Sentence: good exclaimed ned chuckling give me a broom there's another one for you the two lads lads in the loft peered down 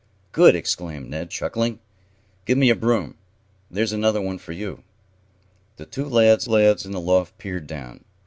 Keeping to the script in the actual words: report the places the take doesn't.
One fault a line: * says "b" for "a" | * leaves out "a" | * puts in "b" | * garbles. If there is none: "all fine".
all fine